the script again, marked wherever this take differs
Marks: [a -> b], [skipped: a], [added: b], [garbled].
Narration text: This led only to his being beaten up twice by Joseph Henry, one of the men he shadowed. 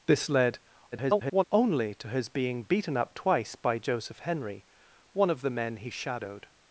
This led [garbled] only to his being beaten up twice by Joseph Henry, one of the men he shadowed.